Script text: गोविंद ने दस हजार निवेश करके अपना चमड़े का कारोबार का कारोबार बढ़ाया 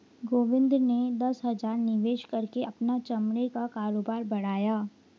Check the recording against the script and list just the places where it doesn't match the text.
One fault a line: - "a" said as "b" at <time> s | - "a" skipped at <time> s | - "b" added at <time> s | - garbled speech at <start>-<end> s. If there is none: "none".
- "का कारोबार" skipped at 4.2 s